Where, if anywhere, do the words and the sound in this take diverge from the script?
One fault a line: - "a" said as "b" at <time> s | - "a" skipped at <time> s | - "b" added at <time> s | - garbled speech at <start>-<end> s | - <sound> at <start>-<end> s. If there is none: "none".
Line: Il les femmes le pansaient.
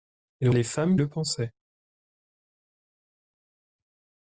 none